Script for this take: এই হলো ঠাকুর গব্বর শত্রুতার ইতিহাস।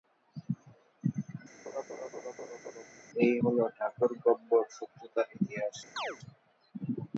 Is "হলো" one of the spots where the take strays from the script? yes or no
no